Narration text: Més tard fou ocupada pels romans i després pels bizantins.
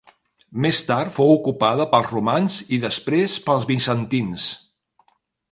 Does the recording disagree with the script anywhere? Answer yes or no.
no